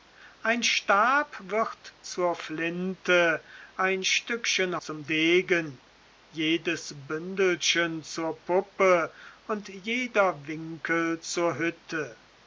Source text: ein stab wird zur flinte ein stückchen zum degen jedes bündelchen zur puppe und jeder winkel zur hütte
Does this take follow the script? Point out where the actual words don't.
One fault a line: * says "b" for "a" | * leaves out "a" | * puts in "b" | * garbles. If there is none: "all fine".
all fine